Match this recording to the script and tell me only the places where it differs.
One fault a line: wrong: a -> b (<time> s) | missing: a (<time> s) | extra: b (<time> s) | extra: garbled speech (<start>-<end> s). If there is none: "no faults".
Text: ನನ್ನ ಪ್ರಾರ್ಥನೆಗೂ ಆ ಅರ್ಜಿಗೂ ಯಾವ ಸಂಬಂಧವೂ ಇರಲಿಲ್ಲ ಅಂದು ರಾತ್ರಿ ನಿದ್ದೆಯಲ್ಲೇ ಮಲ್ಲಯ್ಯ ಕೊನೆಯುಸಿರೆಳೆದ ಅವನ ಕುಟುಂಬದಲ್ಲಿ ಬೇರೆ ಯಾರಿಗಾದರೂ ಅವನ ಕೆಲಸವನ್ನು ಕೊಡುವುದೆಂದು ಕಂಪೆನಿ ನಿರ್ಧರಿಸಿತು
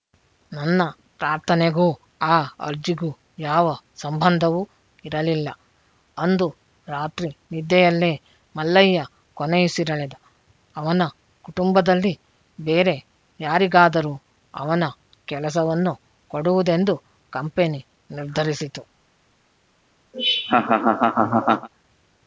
no faults